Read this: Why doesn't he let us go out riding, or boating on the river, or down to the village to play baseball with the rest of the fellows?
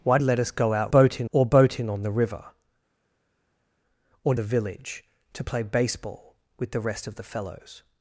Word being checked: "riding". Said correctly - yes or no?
no